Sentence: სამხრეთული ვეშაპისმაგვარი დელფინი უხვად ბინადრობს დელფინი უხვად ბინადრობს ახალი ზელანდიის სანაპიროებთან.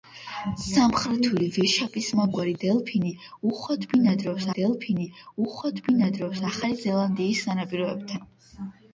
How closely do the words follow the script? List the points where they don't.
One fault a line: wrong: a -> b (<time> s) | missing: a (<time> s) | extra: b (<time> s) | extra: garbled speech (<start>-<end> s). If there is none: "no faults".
no faults